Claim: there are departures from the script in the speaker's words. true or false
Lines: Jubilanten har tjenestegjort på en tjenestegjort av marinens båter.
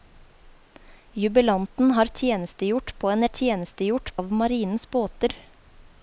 false